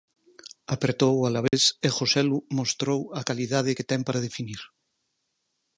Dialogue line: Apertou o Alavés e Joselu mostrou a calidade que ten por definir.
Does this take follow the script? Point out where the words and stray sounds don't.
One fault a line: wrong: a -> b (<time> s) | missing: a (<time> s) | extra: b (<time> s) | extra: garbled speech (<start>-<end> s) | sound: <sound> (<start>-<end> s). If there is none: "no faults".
sound: dropout (1.5-1.5 s)
wrong: por -> para (4.1 s)